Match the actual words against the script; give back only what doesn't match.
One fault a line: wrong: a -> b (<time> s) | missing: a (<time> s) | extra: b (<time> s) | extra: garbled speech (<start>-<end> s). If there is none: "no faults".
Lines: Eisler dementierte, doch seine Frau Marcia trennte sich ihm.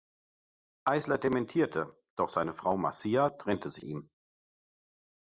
no faults